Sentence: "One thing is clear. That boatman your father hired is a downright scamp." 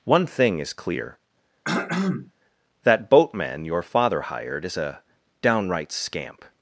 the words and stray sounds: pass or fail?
fail